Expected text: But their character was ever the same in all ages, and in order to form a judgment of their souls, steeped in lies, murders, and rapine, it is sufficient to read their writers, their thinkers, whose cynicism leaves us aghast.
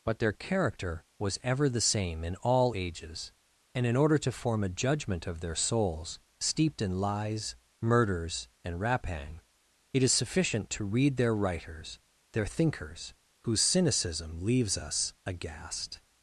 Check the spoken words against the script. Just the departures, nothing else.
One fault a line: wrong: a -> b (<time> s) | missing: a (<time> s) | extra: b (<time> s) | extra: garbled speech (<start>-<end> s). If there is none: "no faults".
no faults